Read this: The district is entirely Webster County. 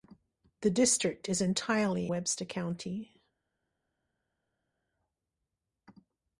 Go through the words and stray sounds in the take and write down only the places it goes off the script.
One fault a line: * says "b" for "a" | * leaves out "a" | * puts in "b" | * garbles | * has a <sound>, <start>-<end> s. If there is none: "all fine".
all fine